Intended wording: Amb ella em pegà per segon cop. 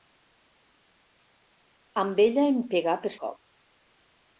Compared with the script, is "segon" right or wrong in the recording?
wrong